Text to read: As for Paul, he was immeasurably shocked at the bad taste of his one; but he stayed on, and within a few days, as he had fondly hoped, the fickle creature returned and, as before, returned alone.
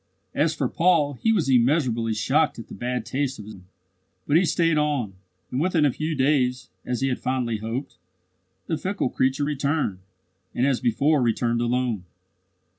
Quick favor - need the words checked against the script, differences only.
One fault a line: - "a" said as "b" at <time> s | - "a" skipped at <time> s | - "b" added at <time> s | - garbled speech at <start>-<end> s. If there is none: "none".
none